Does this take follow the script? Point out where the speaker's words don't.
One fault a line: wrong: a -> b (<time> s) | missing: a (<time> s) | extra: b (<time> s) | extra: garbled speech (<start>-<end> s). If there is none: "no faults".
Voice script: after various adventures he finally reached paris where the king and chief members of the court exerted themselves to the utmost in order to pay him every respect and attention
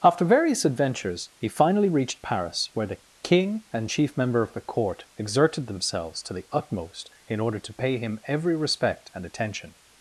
wrong: members -> member (4.1 s)